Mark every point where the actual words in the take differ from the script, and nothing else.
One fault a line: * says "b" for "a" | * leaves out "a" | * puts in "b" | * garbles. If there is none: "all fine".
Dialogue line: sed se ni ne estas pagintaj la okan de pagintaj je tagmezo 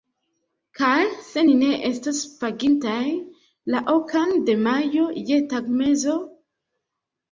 * says "kaj" for "sed"
* says "estos" for "estas"
* says "majo" for "pagintaj"